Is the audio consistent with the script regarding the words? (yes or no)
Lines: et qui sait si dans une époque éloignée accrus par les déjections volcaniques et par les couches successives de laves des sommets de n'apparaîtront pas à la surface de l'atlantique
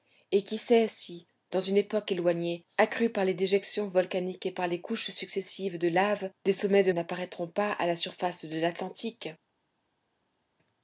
yes